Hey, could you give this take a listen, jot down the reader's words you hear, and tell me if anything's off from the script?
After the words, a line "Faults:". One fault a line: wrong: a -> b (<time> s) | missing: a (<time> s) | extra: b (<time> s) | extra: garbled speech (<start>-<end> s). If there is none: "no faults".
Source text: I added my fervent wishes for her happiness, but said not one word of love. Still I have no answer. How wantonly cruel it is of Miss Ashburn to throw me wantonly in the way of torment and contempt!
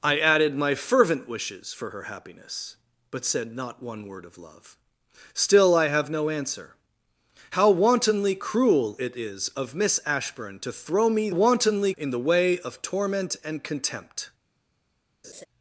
I added my fervent wishes for her happiness, but said not one word of love. Still I have no answer. How wantonly cruel it is of Miss Ashburn to throw me wantonly in the way of torment and contempt!
Faults:
no faults